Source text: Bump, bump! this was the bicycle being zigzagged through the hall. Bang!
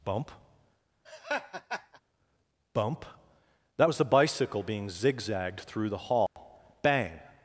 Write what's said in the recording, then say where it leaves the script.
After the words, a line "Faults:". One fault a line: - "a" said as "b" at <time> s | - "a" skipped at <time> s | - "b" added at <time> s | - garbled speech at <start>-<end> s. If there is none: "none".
Bump, bump! that was the bicycle being zigzagged through the hall. Bang!
Faults:
- "this" said as "that" at 3.7 s